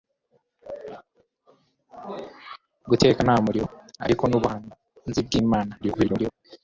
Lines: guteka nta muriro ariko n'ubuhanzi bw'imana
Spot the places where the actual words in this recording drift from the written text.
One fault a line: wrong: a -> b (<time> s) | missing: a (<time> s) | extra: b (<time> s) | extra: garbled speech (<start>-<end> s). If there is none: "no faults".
extra: garbled speech (5.8-6.3 s)